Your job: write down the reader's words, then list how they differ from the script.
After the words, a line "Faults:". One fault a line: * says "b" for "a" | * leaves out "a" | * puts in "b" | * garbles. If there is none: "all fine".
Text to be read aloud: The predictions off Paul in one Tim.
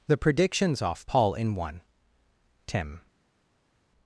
The predictions off Paul in one Tim.
Faults:
all fine